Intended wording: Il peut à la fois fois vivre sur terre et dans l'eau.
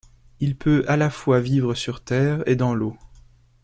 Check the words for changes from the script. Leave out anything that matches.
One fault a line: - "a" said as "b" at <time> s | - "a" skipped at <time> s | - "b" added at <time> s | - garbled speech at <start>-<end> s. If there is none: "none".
- "fois" skipped at 1.4 s